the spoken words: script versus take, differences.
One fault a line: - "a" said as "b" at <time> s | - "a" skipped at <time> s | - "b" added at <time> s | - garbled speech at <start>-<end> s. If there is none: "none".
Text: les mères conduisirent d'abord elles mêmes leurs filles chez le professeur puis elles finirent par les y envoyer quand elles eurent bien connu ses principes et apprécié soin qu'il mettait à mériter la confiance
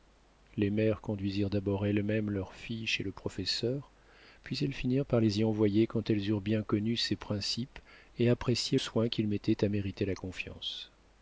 none